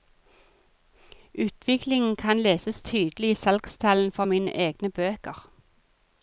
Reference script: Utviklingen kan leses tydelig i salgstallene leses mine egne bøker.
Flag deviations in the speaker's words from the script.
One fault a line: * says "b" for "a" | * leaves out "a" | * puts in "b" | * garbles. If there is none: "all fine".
* says "for" for "leses"